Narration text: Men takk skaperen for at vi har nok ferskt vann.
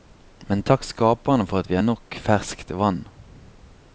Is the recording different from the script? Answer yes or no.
no